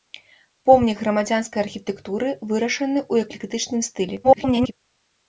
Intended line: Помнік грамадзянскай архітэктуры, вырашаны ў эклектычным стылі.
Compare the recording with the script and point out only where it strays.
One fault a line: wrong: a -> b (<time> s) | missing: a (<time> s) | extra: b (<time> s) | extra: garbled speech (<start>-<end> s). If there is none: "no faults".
extra: garbled speech (4.2-4.7 s)